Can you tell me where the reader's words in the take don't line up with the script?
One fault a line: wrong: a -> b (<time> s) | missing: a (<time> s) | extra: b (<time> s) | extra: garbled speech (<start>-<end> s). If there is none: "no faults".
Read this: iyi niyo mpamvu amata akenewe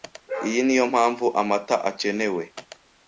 no faults